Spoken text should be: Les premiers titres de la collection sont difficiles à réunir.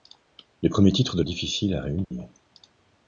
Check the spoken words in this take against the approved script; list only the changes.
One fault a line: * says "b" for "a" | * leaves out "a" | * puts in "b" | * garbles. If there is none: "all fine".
* leaves out "la collection sont"